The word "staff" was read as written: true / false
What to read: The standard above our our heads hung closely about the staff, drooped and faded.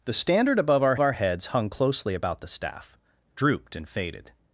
true